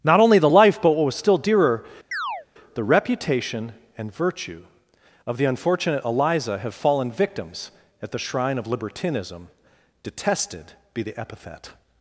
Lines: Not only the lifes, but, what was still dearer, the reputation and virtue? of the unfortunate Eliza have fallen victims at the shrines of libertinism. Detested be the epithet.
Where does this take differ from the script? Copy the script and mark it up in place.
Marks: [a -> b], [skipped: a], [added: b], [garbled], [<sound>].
Not only the [lifes, -> life] but, what was still dearer, [chirp] the reputation and virtue? of the unfortunate Eliza have fallen victims at the [shrines -> shrine] of libertinism. Detested be the epithet.